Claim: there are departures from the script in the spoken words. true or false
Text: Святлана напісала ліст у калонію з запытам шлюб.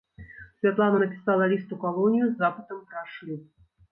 true